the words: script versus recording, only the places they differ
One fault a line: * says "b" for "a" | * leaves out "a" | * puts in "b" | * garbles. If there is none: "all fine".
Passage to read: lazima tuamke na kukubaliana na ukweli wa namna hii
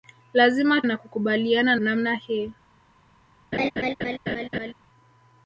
* leaves out "tuamke"
* leaves out "na ukweli wa"